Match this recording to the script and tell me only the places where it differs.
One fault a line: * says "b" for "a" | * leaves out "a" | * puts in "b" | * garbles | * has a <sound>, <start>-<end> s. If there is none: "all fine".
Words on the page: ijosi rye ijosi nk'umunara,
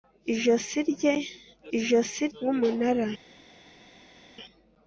all fine